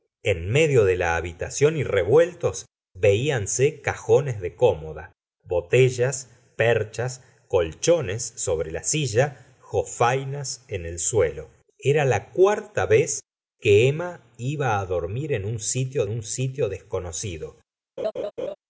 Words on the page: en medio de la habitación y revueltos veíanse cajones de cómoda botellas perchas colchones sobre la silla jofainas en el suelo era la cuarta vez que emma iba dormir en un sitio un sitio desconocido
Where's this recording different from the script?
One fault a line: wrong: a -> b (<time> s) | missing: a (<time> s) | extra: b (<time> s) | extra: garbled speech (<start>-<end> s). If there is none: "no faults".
no faults